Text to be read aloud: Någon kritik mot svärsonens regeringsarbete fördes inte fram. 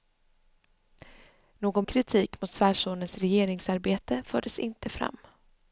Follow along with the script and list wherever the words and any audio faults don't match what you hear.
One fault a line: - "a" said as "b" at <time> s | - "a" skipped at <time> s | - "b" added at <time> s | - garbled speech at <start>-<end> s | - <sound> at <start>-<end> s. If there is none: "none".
none